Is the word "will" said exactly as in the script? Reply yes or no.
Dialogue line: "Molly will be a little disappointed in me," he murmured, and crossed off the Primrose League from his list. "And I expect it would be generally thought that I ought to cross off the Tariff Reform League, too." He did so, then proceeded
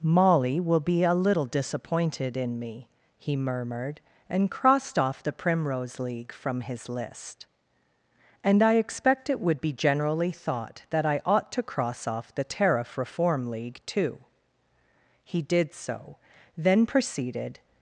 yes